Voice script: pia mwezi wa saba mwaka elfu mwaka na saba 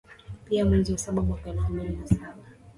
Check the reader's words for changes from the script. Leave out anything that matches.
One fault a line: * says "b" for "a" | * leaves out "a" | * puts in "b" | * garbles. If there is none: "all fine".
* says "mbili" for "mwaka"